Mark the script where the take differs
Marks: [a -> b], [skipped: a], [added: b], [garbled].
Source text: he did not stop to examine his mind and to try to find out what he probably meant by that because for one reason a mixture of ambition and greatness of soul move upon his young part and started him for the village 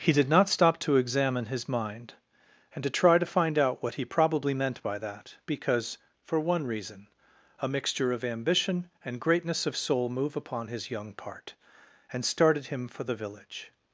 he did not stop to examine his mind and to try to find out what he probably meant by that because for one reason a mixture of ambition and greatness of soul move upon his young part and started him for the village